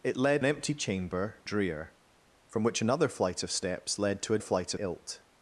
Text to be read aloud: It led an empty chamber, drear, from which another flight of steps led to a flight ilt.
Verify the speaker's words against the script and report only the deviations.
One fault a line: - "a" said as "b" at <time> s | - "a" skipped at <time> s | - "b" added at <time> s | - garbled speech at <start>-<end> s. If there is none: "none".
none